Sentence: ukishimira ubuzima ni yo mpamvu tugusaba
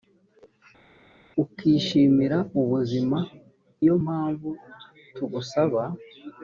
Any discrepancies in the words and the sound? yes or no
yes